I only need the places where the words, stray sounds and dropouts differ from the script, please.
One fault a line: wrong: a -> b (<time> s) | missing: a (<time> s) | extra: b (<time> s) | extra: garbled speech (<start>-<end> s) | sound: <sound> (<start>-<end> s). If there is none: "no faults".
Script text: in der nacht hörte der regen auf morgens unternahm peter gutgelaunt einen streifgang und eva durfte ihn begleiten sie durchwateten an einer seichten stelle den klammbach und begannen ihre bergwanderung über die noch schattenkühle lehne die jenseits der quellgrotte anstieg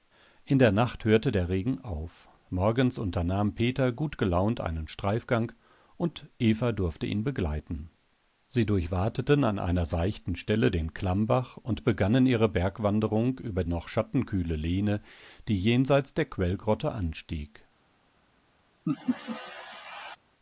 missing: die (13.6 s)
sound: laugh (18.9-20.2 s)